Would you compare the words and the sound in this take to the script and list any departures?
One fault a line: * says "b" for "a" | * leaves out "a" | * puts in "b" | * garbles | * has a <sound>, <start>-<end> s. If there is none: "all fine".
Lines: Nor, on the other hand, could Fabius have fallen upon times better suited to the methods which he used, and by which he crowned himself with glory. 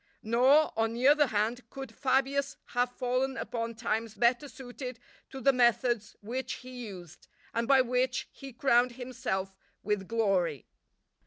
all fine